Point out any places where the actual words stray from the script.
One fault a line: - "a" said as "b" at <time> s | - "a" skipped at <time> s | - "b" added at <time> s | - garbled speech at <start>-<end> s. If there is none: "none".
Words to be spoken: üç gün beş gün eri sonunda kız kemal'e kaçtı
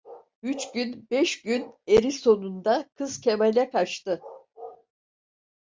none